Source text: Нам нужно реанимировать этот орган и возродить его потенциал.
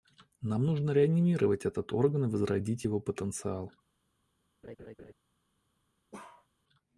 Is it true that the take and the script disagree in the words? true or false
false